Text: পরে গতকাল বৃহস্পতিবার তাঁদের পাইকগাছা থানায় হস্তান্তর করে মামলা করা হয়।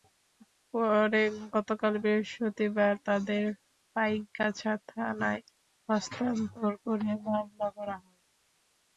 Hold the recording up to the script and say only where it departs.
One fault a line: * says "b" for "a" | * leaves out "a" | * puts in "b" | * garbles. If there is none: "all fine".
all fine